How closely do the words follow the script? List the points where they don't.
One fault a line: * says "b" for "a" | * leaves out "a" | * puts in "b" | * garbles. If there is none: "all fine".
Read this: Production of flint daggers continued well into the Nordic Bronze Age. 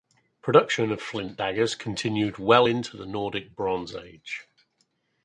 all fine